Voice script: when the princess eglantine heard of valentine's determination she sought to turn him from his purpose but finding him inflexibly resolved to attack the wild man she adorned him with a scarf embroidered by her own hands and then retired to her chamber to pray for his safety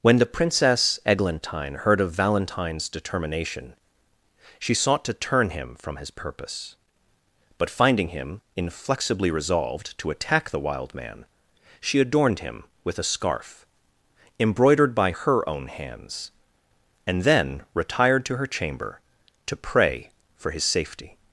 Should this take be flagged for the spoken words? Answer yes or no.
no